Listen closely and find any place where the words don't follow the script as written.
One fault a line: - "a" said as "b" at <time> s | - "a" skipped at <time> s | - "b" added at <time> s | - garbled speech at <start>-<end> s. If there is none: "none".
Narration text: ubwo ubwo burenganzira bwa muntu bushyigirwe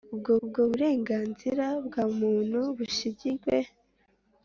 none